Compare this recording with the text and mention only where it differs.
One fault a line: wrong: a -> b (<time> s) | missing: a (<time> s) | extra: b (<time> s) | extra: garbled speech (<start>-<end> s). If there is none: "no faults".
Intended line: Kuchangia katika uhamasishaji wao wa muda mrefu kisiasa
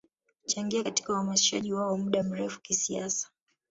no faults